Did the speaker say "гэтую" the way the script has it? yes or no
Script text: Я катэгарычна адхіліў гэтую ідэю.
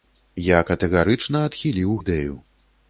no